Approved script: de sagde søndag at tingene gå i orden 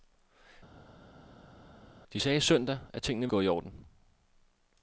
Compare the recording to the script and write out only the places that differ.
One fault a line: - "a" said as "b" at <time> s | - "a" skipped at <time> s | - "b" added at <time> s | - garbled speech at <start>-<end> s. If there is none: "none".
none